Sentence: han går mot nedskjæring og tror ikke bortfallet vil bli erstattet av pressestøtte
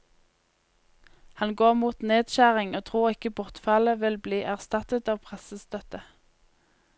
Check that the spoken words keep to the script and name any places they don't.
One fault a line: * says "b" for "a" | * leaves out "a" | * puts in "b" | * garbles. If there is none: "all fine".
all fine